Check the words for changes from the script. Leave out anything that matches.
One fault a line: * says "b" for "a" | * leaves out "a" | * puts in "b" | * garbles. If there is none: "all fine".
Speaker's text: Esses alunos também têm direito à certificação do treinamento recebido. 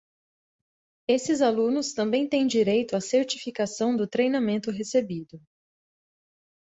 all fine